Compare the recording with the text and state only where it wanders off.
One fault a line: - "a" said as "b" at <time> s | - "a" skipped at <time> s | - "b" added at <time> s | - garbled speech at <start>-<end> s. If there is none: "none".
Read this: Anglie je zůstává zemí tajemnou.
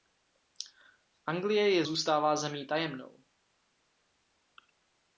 none